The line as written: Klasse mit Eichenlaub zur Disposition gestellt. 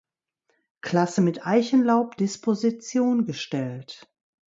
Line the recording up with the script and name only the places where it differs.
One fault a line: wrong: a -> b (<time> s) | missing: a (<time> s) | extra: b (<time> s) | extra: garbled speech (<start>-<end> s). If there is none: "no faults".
missing: zur (2.2 s)